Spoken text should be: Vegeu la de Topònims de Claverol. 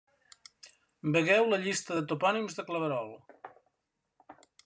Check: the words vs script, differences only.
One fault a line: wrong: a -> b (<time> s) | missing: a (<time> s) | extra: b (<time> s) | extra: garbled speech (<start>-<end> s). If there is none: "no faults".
extra: llista (1.6 s)